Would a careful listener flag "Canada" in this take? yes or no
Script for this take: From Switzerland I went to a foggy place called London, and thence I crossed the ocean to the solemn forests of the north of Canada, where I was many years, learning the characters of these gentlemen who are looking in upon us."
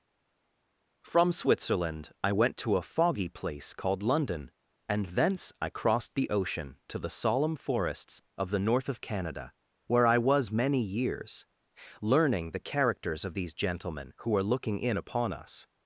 no